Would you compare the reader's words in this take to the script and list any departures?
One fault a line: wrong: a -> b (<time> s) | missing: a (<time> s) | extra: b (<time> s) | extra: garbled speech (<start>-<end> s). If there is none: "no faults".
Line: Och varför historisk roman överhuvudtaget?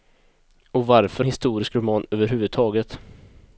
no faults